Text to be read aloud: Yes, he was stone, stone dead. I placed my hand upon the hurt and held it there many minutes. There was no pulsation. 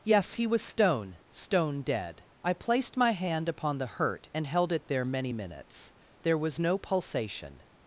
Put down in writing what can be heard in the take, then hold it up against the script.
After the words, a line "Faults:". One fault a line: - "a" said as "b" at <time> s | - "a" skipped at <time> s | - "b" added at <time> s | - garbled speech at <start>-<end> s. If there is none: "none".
Yes, he was stone, stone dead. I placed my hand upon the hurt and held it there many minutes. There was no pulsation.
Faults:
none